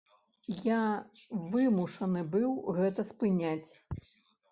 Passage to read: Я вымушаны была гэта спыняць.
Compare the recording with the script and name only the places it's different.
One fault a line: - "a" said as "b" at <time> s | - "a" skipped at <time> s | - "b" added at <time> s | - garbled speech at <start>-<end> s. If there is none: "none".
- "была" said as "быў" at 2.4 s